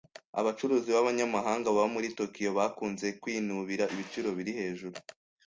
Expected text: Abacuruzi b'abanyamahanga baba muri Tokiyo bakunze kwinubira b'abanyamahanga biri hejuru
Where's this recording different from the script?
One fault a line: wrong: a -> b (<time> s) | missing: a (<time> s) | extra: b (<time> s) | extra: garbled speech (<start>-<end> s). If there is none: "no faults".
wrong: b'abanyamahanga -> ibiciro (3.9 s)